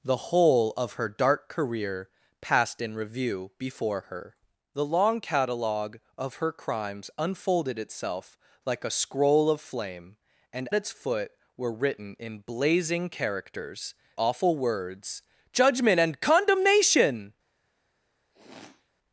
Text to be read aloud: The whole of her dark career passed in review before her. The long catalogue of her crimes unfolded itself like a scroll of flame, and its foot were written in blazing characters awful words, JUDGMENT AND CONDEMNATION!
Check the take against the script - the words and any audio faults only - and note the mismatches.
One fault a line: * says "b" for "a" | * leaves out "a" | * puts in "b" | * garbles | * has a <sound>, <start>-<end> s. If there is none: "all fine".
* has a sniff, 18.3-18.9 s